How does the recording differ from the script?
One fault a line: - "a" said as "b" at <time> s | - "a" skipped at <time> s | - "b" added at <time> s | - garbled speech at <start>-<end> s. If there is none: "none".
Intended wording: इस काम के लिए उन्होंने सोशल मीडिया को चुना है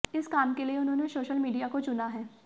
none